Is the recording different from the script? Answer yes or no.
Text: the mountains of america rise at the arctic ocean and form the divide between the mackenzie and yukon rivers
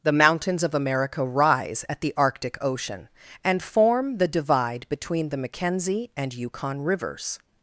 no